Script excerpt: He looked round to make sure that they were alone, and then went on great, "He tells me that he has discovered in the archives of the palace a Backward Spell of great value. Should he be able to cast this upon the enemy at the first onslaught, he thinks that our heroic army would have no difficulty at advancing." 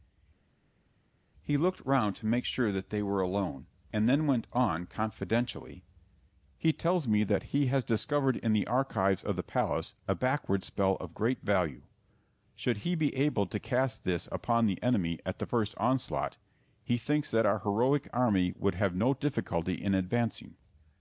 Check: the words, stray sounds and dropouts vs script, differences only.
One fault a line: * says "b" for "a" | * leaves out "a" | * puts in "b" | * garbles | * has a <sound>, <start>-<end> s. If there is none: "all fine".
* says "confidentially" for "great"
* says "in" for "at"